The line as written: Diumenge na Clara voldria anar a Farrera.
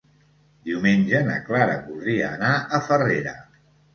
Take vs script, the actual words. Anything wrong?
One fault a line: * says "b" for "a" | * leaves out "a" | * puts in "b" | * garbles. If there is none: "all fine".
all fine